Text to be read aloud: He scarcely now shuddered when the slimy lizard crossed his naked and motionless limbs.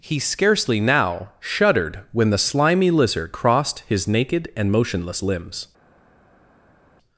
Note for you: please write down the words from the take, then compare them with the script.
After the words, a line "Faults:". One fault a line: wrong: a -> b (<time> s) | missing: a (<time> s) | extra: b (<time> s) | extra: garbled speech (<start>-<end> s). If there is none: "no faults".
He scarcely now shuddered when the slimy lizard crossed his naked and motionless limbs.
Faults:
no faults